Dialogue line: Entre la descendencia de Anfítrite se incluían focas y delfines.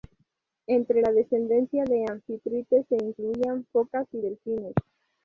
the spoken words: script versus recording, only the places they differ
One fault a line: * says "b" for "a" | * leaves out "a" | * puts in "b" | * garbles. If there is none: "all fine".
all fine